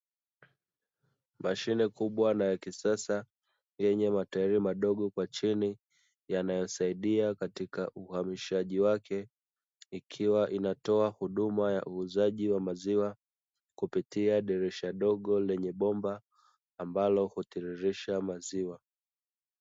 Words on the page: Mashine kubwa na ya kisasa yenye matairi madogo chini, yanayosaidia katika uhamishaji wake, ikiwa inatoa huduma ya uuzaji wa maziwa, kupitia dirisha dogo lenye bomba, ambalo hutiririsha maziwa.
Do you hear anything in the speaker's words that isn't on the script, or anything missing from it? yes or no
yes